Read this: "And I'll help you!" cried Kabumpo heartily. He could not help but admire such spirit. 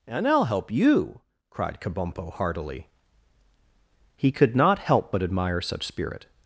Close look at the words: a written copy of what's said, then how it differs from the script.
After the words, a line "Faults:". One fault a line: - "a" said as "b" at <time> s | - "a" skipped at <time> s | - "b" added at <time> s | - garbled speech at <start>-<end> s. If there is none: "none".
"And I'll help you!" cried Kabumpo heartily. He could not help but admire such spirit.
Faults:
none